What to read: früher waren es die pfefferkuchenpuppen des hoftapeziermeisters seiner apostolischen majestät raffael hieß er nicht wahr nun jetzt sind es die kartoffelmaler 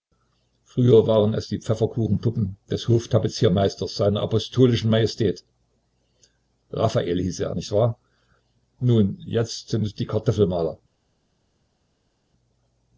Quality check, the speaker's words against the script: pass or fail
pass